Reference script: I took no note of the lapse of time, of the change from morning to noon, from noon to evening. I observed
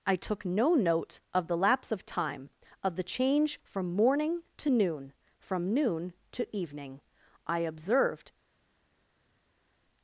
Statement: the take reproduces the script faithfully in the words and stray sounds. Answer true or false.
true